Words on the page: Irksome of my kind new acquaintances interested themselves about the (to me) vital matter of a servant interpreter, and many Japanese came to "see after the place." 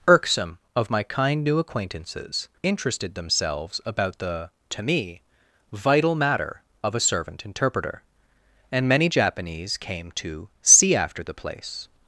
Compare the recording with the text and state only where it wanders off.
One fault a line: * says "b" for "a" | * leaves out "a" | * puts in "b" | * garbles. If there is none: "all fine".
all fine